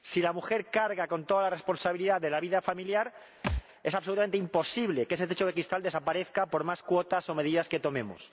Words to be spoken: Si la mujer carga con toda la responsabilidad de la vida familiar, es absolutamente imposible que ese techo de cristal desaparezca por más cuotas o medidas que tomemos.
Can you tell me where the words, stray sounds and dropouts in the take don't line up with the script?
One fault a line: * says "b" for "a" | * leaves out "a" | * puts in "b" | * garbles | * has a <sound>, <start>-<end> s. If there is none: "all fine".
* has a thud, 3.4-3.6 s